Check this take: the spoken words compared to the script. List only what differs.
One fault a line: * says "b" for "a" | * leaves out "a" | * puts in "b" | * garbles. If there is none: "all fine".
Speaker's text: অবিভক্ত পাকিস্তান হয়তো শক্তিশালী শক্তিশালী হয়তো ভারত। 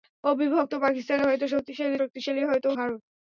all fine